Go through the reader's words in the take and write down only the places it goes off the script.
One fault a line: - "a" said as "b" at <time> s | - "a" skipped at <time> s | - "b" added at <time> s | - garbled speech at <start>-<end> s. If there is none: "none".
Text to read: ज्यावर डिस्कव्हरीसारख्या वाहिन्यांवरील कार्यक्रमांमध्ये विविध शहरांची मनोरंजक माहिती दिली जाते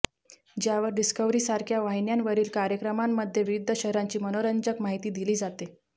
none